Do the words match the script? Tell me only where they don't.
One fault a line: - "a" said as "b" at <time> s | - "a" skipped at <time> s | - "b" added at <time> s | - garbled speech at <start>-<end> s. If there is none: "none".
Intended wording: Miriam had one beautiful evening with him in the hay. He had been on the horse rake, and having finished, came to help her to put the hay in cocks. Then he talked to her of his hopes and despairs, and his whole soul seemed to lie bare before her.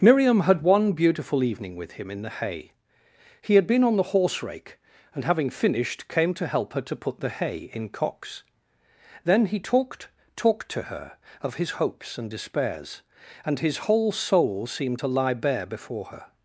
- "talked" added at 10.4 s